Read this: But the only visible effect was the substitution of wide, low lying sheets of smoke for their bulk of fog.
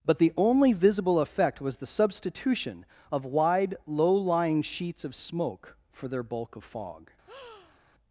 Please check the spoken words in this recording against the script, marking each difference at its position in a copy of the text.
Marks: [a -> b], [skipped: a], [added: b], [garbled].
But the only visible effect was the substitution of wide, low lying sheets of smoke for their bulk of fog.